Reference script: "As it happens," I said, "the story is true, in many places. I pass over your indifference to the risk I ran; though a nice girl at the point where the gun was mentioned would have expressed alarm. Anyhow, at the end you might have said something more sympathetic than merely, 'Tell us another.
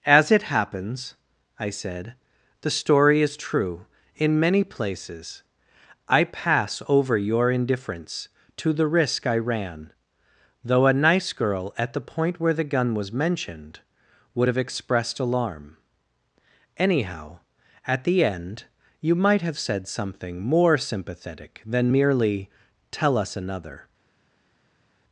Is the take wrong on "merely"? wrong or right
right